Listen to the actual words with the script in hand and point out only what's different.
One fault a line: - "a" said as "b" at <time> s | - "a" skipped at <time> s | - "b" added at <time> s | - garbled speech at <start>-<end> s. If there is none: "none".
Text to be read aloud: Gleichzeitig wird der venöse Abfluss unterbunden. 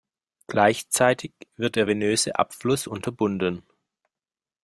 none